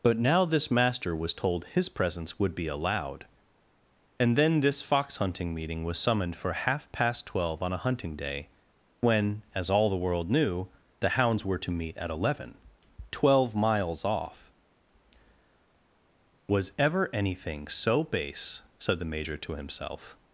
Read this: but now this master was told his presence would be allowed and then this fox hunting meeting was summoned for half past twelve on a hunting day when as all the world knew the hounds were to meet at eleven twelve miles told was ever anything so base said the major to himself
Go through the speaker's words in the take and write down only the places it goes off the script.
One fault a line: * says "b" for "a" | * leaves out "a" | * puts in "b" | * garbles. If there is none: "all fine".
* says "off" for "told"